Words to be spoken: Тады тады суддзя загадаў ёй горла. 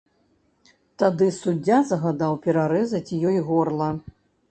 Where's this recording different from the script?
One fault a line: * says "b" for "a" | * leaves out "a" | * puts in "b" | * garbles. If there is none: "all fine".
* leaves out "тады"
* puts in "перарэзаць"